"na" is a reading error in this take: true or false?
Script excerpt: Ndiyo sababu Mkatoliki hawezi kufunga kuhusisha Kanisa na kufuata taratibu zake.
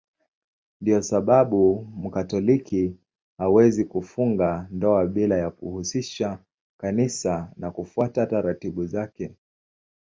false